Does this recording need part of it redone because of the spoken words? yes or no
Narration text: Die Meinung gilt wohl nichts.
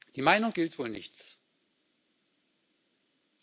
no